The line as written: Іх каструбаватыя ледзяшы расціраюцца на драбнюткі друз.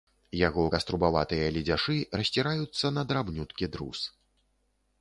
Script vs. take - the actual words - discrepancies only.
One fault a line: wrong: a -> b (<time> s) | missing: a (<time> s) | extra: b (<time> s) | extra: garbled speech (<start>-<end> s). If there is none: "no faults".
wrong: Іх -> Яго (0.5 s)